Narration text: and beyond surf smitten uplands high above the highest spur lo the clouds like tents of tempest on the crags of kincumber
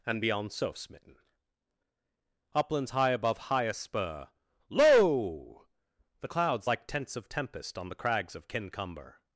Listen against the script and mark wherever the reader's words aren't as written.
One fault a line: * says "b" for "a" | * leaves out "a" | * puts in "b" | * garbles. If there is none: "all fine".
* leaves out "the"